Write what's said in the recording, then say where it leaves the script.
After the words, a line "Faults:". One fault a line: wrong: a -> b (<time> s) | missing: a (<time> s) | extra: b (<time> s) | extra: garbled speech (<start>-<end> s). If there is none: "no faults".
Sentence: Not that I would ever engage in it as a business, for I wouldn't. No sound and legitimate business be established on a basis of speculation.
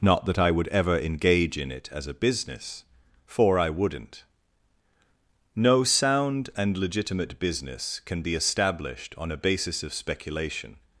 Not that I would ever engage in it as a business, for I wouldn't. No sound and legitimate business can be established on a basis of speculation.
Faults:
extra: can (8.0 s)